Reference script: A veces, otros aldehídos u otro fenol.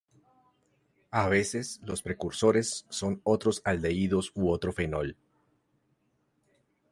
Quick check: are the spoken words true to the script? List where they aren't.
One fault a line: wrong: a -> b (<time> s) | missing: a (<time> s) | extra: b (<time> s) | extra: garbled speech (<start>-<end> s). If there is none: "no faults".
extra: los precursores son (1.9 s)